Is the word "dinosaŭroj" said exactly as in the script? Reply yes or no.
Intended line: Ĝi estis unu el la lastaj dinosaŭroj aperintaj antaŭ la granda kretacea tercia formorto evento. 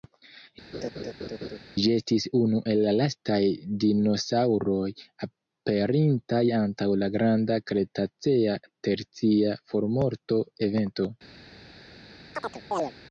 yes